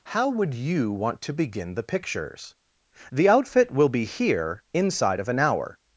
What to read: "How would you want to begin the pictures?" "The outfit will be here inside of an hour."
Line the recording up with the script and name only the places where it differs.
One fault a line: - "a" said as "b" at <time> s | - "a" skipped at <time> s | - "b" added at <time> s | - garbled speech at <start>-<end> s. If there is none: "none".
none